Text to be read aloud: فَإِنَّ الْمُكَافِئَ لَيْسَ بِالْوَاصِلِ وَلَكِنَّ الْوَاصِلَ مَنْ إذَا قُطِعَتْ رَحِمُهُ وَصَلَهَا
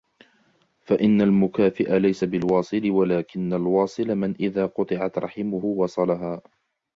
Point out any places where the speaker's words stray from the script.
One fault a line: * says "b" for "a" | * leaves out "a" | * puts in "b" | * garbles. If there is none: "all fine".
all fine